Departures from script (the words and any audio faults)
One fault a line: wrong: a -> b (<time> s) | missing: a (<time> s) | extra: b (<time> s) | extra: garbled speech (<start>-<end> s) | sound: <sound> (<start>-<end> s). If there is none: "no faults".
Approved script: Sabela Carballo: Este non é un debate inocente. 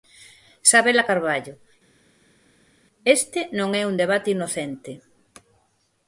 no faults